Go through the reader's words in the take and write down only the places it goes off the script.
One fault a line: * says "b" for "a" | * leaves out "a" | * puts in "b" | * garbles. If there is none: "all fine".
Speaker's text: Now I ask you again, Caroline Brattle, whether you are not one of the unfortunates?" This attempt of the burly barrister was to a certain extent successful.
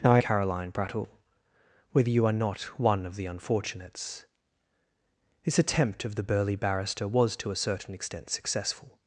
* leaves out "ask you again"